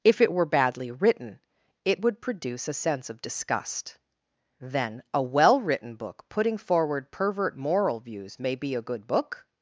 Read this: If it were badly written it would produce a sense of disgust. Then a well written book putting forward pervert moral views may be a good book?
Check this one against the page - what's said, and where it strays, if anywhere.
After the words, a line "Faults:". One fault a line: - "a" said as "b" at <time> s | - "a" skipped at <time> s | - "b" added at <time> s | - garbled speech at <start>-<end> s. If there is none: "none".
If it were badly written it would produce a sense of disgust. Then a well written book putting forward pervert moral views may be a good book?
Faults:
none